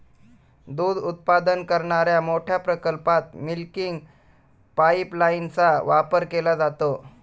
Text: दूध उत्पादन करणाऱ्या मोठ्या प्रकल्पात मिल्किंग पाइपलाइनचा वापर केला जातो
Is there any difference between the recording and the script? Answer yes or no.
no